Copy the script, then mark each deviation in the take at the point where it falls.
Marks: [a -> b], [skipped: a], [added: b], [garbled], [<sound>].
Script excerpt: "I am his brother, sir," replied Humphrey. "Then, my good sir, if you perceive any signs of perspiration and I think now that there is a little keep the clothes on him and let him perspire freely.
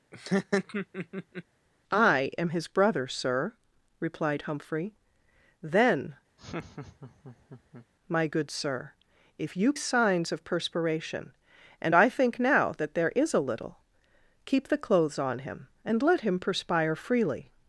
[laugh] "I am his brother, sir," replied Humphrey. "Then, [laugh] my good sir, if you [skipped: perceive any] signs of perspiration and I think now that there is a little keep the clothes on him and let him perspire freely.